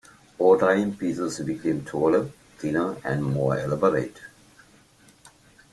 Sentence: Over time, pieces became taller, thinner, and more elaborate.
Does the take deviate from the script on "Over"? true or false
false